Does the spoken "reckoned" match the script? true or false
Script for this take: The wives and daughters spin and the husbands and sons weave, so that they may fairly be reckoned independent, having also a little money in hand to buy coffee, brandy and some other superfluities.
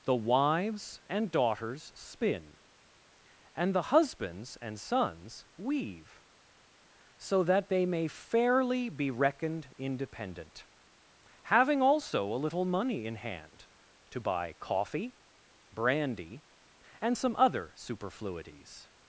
true